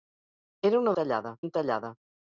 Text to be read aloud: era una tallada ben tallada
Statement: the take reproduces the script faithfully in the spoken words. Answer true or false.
true